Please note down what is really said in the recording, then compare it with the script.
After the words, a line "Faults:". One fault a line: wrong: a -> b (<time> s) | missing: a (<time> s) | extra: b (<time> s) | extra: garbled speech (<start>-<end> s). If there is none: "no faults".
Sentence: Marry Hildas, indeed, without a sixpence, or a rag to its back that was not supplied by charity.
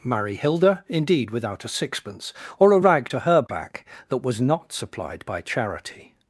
Marry Hilda, indeed, without a sixpence, or a rag to her back that was not supplied by charity.
Faults:
wrong: Hildas -> Hilda (0.3 s)
wrong: its -> her (3.2 s)